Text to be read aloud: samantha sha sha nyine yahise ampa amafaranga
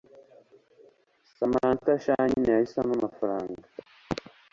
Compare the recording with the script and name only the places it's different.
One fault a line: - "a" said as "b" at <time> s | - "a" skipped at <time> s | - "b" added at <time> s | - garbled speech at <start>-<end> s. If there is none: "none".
- "sha" skipped at 2.1 s